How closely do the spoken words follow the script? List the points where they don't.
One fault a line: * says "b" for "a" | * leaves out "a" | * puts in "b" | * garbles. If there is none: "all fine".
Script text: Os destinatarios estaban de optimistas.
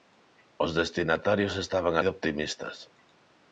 all fine